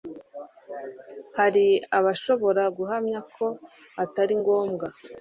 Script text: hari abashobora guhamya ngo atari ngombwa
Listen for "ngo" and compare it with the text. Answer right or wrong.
wrong